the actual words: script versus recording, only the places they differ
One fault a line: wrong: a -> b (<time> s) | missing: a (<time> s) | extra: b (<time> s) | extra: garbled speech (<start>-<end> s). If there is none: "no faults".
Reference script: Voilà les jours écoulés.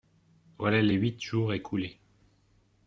extra: huit (0.9 s)